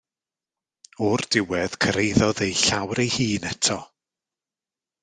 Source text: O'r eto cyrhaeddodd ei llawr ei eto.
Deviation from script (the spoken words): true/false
true